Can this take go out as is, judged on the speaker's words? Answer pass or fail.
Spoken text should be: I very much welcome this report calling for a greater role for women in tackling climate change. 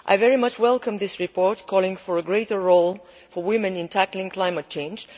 pass